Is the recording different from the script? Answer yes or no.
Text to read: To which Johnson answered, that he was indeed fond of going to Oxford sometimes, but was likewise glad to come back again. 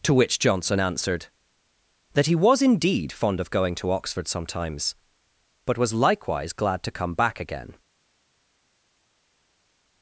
no